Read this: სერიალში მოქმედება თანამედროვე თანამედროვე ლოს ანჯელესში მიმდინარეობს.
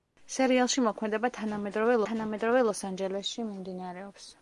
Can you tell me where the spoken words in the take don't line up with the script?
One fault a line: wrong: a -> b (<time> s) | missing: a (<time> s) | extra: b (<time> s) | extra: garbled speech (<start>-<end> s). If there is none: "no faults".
no faults